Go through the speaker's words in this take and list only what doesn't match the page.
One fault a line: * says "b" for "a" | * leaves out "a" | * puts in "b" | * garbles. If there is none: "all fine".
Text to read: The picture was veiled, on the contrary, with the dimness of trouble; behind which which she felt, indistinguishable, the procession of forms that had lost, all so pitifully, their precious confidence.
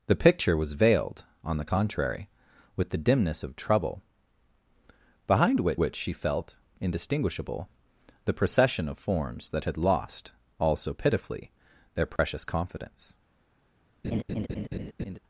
all fine